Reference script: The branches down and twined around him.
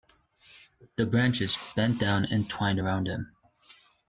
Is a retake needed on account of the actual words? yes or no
yes